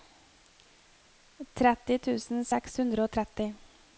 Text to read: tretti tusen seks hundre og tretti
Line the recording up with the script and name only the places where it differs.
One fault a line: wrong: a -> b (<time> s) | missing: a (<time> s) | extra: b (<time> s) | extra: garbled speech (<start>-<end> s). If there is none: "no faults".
no faults